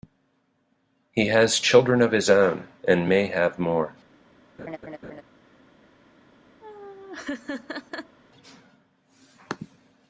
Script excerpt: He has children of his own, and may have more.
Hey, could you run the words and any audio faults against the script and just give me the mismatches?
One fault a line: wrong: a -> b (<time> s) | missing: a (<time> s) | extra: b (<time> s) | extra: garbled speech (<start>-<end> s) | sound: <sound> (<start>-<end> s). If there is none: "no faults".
sound: laugh (4.6-5.2 s)
sound: laugh (6.6-8.2 s)